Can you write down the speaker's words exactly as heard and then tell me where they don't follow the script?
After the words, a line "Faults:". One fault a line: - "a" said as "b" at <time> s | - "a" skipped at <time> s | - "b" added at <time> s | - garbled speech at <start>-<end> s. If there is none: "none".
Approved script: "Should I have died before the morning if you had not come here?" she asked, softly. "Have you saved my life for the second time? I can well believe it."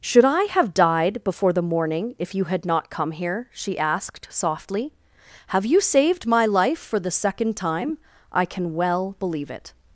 "Should I have died before the morning if you had not come here?" she asked, softly. "Have you saved my life for the second time? I can well believe it."
Faults:
none